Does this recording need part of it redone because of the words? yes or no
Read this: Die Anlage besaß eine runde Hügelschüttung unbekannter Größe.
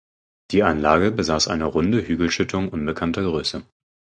no